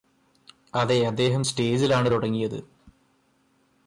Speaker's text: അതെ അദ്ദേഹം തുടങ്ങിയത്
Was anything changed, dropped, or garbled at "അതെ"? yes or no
no